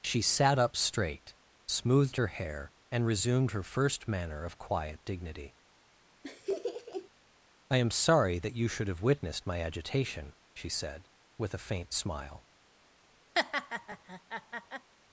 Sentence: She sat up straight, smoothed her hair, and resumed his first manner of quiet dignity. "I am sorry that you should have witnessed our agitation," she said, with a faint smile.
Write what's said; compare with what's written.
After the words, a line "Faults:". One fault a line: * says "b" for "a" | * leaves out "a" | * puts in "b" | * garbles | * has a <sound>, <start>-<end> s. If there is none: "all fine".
She sat up straight, smoothed her hair, and resumed her first manner of quiet dignity. "I am sorry that you should have witnessed my agitation," she said, with a faint smile.
Faults:
* says "her" for "his"
* has a laugh, 6.2-7.1 s
* says "my" for "our"
* has a laugh, 13.4-14.9 s